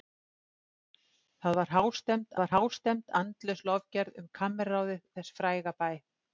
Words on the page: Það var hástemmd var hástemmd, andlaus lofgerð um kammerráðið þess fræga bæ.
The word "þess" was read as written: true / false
true